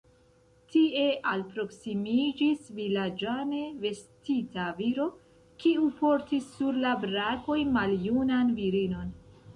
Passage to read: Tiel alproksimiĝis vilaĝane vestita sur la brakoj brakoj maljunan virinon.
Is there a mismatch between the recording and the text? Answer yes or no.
yes